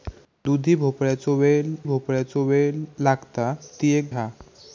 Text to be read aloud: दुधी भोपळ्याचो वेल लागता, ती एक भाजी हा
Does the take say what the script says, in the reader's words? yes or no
no